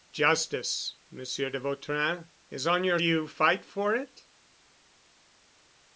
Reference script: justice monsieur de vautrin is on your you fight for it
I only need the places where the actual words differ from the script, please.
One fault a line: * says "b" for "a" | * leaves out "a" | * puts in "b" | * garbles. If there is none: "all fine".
all fine